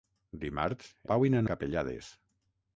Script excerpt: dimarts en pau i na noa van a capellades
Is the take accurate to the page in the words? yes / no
no